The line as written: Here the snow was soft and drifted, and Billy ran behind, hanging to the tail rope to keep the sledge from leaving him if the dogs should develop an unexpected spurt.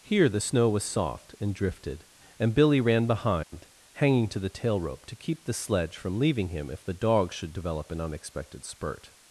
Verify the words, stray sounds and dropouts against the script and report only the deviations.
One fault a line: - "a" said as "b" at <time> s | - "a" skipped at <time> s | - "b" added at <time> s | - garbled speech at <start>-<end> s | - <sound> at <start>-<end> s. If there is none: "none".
- dropout at 3.4-3.5 s